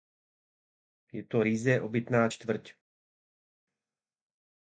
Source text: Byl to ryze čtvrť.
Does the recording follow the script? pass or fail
fail